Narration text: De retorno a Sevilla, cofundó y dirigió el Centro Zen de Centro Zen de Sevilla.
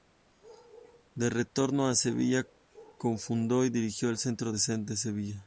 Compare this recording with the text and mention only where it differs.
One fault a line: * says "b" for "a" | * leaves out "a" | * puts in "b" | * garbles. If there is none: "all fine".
* leaves out "Centro Zen de"